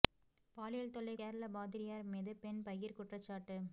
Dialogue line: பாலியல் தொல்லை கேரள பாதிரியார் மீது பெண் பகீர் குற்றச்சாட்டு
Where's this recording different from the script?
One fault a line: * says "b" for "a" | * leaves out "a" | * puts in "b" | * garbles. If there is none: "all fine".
all fine